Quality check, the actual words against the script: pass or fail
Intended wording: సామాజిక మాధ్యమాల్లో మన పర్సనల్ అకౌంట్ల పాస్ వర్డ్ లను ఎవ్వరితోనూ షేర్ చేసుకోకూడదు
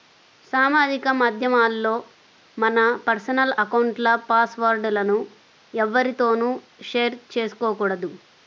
pass